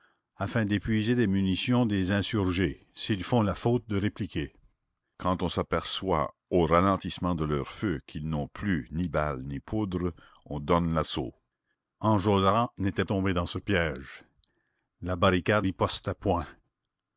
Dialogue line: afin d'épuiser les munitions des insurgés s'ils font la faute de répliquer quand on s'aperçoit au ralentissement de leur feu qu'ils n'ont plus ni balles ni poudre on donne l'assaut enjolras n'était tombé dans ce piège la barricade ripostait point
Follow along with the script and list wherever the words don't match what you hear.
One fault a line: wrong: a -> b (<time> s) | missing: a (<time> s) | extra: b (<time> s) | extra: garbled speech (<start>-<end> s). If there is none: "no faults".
no faults